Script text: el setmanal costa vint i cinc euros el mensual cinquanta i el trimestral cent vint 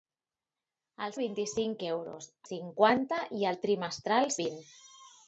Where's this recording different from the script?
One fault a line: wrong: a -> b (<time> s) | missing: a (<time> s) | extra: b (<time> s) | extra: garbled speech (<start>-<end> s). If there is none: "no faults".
missing: setmanal costa (1.1 s)
missing: el mensual (2.3 s)
missing: cent (4.3 s)